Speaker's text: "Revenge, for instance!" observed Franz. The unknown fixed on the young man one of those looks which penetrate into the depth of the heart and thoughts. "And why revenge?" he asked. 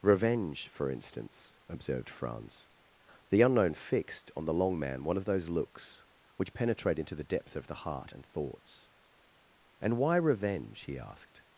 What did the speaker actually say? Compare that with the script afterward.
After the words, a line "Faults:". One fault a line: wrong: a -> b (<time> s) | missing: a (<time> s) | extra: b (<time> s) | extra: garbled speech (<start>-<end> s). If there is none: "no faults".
"Revenge, for instance!" observed Franz. The unknown fixed on the long man one of those looks which penetrate into the depth of the heart and thoughts. "And why revenge?" he asked.
Faults:
wrong: young -> long (4.5 s)